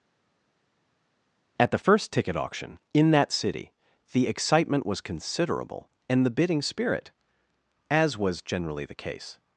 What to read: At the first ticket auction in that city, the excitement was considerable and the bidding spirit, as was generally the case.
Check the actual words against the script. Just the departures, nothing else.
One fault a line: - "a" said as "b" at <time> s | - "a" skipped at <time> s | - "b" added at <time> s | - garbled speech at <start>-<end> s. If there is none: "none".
none